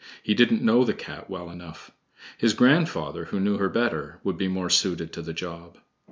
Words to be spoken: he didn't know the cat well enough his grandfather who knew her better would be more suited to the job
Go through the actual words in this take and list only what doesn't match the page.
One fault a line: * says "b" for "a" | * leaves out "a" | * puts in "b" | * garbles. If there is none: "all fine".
all fine